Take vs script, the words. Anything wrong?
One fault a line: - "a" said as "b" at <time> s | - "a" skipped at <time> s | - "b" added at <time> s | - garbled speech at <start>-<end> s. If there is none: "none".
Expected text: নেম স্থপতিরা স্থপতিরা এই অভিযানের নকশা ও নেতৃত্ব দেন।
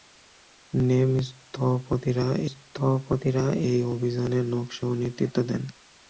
none